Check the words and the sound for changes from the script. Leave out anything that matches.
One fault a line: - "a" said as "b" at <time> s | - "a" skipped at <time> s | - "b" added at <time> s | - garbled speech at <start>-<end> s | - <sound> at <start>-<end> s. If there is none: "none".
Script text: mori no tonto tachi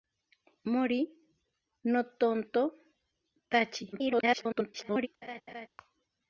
- garbled speech at 3.9-5.1 s
- laugh at 5.2-5.7 s